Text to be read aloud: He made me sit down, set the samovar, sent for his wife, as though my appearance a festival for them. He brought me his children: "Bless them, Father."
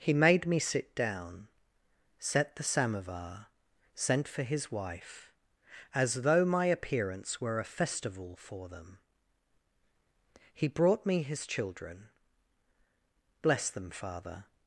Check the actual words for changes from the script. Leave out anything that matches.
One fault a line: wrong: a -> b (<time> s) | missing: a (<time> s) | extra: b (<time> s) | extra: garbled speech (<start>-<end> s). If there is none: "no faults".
extra: were (7.4 s)